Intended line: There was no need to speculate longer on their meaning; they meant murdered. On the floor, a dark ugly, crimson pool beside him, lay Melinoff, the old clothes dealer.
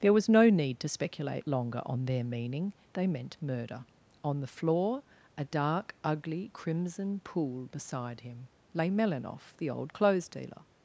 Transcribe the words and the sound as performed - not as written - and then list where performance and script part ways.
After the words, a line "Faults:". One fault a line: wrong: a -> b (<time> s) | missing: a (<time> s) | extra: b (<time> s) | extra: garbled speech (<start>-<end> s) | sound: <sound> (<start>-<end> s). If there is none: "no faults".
There was no need to speculate longer on their meaning; they meant murder. On the floor, a dark ugly, crimson pool beside him, lay Melinoff, the old clothes dealer.
Faults:
wrong: murdered -> murder (3.4 s)